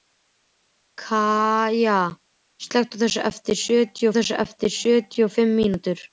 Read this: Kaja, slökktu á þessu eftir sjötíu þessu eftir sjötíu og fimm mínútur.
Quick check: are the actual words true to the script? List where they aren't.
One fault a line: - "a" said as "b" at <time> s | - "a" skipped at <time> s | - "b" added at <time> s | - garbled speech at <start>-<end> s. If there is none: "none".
none